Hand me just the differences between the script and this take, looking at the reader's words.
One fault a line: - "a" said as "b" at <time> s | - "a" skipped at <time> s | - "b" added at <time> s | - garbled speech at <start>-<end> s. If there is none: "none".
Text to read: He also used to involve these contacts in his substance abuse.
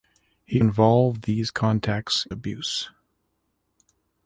- "also used to" skipped at 0.6 s
- "in his substance" skipped at 2.3 s